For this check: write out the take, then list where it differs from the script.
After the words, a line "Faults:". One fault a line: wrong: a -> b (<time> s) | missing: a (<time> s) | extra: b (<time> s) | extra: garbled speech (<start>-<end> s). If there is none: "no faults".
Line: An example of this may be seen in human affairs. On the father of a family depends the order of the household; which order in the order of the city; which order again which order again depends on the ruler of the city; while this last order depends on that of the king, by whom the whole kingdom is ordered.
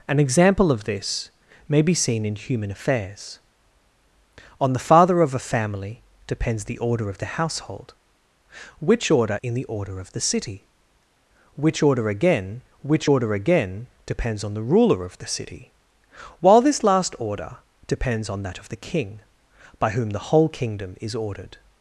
An example of this may be seen in human affairs. On the father of a family depends the order of the household; which order in the order of the city; which order again which order again depends on the ruler of the city; while this last order depends on that of the king, by whom the whole kingdom is ordered.
Faults:
no faults